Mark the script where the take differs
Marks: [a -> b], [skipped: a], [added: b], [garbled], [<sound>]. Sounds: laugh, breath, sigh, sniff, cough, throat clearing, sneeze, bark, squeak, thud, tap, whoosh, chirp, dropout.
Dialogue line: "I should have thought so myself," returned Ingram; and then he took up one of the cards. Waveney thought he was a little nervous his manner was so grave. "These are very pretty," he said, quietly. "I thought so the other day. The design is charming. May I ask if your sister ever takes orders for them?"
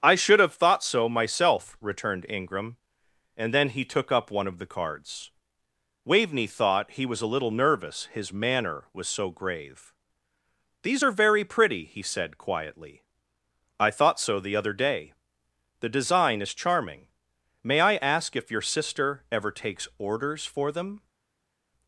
"I should have thought so myself," returned Ingram; and then he took up one of the cards. Waveney thought he was a little nervous his manner was so grave. "These are very pretty," he said, quietly. "I thought so the other day. The design is charming. May I ask if your sister ever takes orders for them?"